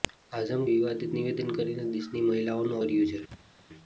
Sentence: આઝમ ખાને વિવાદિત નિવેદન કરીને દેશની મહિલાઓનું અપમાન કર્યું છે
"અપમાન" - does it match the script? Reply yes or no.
no